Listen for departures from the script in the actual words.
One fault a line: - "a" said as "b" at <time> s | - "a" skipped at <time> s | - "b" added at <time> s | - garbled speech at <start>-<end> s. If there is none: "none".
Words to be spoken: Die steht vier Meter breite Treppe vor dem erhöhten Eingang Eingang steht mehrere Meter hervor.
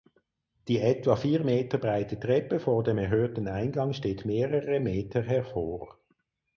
- "steht" said as "etwa" at 0.8 s
- "Eingang" skipped at 3.9 s